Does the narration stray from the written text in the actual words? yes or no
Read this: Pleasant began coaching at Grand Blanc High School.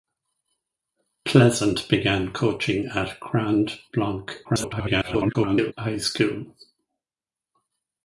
yes